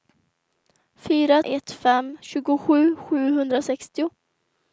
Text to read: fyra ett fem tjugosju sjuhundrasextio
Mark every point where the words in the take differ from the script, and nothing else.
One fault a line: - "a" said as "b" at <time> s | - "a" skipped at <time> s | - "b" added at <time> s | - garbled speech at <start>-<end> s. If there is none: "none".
none